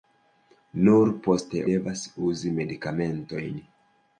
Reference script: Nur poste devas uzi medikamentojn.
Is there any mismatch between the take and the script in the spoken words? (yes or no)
no